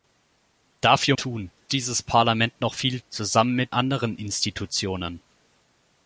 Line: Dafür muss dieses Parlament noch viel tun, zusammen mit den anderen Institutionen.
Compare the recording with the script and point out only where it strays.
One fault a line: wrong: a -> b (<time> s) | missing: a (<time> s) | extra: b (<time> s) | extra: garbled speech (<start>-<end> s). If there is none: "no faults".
wrong: muss -> tun (1.1 s)
missing: tun (3.0 s)
missing: den (3.8 s)